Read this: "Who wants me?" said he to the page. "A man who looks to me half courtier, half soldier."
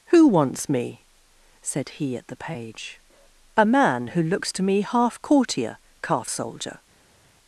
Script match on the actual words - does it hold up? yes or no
no